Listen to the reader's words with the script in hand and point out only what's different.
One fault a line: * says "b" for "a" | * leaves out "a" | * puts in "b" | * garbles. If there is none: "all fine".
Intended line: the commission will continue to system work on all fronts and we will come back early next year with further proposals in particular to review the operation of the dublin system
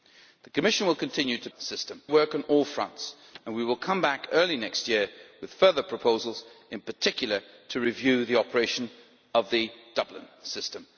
all fine